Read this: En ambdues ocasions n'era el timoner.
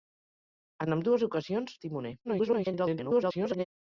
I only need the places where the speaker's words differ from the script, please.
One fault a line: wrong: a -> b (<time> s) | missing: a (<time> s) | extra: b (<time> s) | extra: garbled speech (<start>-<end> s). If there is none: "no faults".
missing: n'era (1.8 s)
extra: garbled speech (2.2-3.6 s)